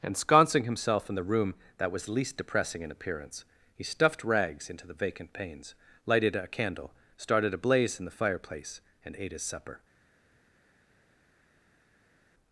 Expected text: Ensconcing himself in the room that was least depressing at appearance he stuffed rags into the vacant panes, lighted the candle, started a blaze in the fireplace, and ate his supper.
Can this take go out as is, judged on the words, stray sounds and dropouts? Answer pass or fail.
fail